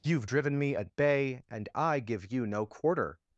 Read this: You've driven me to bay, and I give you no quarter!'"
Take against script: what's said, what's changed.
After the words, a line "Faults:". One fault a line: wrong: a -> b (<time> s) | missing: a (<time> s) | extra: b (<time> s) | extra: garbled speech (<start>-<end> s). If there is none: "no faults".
You've driven me at bay, and I give you no quarter!'"
Faults:
wrong: to -> at (0.8 s)